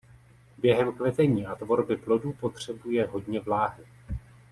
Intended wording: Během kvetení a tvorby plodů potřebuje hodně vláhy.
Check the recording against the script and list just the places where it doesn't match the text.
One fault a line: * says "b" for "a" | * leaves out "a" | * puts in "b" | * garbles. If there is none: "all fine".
all fine